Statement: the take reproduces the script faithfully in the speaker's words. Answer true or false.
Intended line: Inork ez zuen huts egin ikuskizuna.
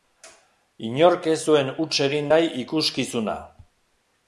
false